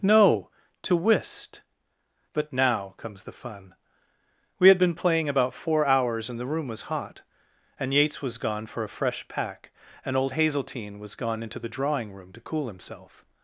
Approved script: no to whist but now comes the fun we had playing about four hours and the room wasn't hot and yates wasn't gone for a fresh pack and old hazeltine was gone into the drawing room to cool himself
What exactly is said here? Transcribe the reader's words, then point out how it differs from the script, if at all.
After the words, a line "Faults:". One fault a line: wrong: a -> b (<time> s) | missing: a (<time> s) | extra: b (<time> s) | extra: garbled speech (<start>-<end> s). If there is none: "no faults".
no to whist but now comes the fun we had been playing about four hours and the room was hot and yates was gone for a fresh pack and old hazeltine was gone into the drawing room to cool himself
Faults:
extra: been (4.8 s)
wrong: wasn't -> was (6.7 s)
wrong: wasn't -> was (8.2 s)